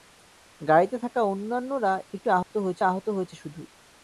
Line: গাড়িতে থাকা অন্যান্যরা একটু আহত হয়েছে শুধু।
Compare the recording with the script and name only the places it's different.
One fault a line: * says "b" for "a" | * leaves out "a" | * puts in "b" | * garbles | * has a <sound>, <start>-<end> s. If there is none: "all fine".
* has a dropout, 2.4-2.5 s
* puts in "আহত হয়েছে"